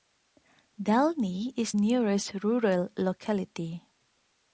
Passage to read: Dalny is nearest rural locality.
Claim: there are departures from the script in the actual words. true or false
false